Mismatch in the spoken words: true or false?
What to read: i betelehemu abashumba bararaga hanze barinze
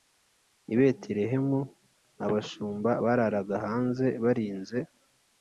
false